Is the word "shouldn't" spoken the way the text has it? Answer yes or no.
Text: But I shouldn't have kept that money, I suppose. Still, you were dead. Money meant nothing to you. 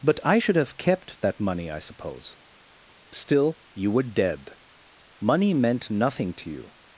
no